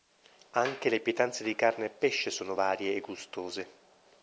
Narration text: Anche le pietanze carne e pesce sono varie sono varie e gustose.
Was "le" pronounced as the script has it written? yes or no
yes